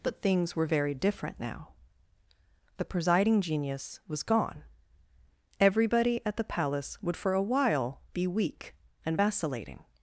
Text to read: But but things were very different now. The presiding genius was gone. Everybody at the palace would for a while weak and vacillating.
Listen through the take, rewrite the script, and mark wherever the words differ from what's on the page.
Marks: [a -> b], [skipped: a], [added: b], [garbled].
But [skipped: but] things were very different now. The presiding genius was gone. Everybody at the palace would for a while [added: be] weak and vacillating.